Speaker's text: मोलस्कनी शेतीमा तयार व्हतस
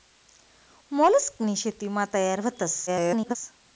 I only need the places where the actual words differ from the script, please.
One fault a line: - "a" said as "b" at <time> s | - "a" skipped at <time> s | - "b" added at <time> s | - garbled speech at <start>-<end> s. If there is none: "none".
- garbled speech at 2.9-3.4 s